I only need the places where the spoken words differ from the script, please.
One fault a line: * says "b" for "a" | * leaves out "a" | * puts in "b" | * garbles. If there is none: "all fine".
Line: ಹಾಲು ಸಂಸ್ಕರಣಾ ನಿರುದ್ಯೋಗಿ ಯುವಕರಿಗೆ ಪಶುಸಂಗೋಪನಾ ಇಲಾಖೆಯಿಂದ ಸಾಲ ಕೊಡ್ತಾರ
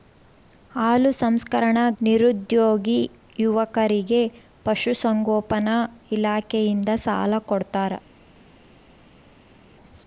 all fine